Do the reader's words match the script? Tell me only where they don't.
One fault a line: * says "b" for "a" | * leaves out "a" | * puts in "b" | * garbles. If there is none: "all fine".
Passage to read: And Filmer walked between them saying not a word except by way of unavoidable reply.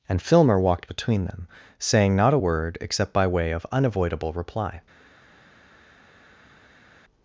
all fine